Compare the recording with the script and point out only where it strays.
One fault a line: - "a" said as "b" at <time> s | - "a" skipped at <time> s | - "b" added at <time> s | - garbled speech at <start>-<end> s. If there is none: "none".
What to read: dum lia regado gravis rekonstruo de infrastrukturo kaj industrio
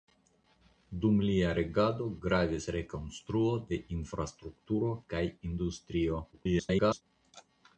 - garbled speech at 6.3-7.0 s